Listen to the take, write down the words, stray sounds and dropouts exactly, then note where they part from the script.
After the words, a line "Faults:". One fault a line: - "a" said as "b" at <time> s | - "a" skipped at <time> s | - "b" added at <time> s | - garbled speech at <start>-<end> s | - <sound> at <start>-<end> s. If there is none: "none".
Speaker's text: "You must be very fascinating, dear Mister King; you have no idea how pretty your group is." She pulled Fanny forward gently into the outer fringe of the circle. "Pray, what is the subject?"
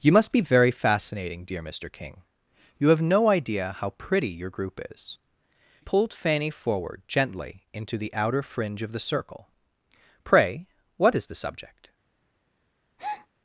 "You must be very fascinating, dear Mister King; you have no idea how pretty your group is." Pulled Fanny forward gently into the outer fringe of the circle. "Pray, what is the subject?"
Faults:
- "She" skipped at 5.2 s
- breath at 13.0-13.3 s